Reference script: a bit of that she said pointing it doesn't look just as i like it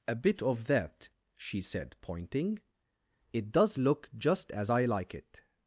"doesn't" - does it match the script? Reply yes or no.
no